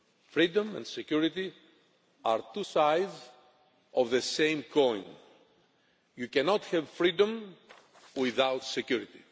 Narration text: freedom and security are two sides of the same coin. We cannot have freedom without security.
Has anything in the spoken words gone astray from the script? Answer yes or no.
yes